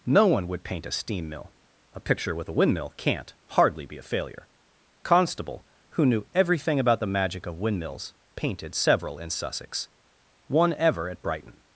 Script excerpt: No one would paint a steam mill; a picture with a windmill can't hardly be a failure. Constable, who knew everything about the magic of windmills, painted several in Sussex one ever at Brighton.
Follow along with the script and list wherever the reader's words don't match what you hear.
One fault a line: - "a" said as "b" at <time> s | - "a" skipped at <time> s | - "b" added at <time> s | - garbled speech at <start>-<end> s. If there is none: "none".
none